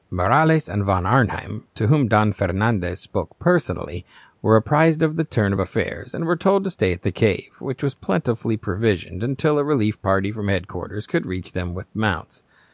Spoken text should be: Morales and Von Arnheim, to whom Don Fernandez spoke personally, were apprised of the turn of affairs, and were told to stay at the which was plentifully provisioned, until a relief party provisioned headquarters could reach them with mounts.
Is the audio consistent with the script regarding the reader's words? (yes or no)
no